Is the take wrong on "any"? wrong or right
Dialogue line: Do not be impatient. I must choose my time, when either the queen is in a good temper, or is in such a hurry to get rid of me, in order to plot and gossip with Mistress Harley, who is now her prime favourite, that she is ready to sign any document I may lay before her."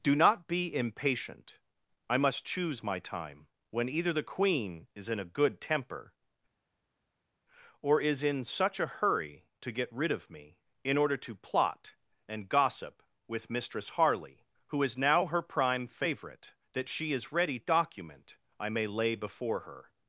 wrong